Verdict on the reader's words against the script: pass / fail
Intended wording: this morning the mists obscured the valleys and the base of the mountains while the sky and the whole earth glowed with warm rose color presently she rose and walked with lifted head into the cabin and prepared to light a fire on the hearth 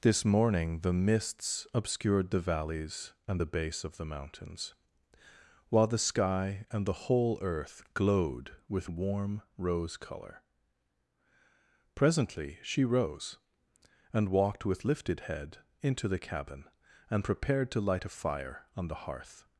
pass